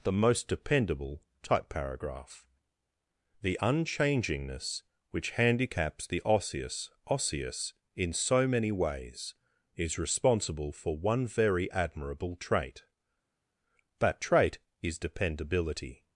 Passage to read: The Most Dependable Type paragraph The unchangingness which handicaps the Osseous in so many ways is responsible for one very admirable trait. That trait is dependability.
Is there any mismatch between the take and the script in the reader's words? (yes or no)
yes